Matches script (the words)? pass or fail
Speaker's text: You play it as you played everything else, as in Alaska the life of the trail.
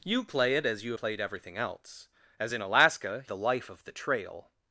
pass